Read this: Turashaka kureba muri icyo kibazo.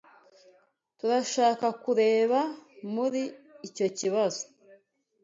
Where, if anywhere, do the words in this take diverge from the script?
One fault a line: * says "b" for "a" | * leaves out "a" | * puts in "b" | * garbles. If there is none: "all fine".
all fine